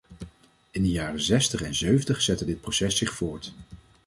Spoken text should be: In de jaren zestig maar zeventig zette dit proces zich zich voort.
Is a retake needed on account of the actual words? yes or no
yes